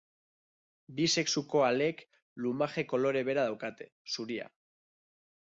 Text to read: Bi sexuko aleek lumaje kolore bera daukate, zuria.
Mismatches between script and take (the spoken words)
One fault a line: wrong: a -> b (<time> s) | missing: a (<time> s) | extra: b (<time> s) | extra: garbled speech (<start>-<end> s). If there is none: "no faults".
no faults